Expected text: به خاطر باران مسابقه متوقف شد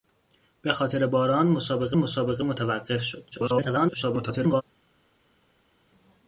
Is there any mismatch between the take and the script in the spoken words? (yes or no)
yes